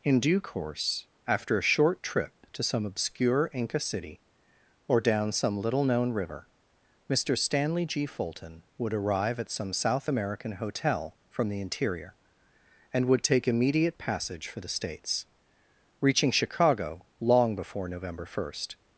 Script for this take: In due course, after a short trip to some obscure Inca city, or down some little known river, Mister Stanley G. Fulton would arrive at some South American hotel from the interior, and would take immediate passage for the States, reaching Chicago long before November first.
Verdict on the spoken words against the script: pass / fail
pass